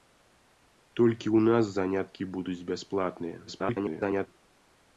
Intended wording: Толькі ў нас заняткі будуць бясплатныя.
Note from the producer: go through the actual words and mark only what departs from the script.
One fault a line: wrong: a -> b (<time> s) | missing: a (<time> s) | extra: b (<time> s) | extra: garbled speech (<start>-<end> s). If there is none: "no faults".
extra: garbled speech (3.5-4.3 s)